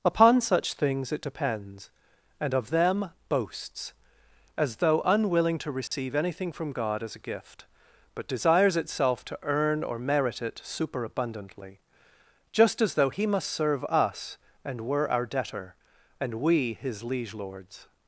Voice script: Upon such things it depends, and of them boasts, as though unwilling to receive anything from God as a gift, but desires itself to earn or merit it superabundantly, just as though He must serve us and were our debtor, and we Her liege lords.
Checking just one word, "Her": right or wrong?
wrong